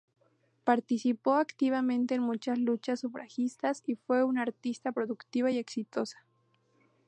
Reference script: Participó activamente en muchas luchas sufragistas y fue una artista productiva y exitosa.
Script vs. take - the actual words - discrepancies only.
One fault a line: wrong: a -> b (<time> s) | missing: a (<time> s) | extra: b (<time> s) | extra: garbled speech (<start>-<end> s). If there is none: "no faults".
no faults